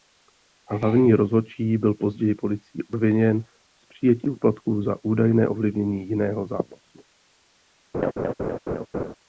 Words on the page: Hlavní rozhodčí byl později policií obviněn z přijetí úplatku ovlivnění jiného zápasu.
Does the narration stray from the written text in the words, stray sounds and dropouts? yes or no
yes